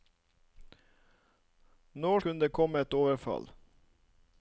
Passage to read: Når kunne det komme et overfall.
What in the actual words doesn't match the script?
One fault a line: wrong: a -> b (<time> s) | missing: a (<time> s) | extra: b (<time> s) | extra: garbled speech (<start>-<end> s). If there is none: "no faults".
no faults